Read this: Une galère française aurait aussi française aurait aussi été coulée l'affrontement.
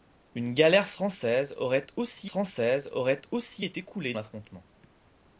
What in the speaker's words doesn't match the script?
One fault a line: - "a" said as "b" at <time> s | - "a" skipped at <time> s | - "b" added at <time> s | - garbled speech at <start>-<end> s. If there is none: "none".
none